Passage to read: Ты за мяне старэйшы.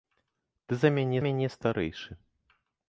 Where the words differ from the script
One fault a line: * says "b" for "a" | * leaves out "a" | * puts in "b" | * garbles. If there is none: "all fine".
* puts in "мяне"